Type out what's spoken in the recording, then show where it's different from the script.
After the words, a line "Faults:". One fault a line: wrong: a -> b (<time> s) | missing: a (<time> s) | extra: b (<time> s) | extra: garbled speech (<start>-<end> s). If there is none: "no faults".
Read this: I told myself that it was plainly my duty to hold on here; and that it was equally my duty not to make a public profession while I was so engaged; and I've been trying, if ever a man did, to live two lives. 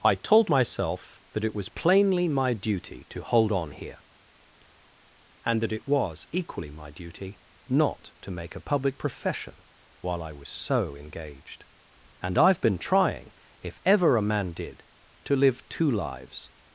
I told myself that it was plainly my duty to hold on here; and that it was equally my duty not to make a public profession while I was so engaged; and I've been trying, if ever a man did, to live two lives.
Faults:
no faults